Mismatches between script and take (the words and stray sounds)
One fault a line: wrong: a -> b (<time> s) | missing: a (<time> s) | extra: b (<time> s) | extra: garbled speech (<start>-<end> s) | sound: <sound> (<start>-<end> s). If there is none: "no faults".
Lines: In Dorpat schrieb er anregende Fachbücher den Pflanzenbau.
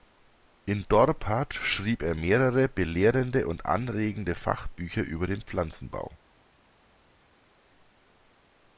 extra: mehrere belehrende und (2.1 s)
extra: über (5.0 s)